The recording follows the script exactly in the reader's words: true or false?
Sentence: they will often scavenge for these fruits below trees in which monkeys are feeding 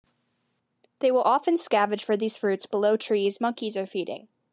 false